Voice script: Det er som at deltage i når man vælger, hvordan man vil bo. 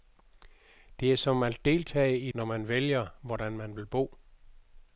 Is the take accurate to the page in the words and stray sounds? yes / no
yes